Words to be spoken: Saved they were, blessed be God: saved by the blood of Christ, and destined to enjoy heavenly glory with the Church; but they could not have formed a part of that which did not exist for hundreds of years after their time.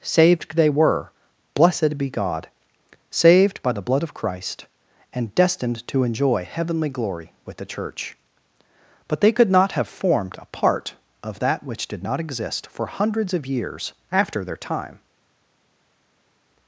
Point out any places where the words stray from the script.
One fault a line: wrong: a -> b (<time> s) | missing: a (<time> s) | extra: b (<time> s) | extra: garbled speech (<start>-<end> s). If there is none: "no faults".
no faults